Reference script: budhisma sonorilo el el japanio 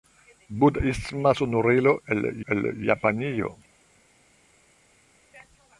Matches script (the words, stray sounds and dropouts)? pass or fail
pass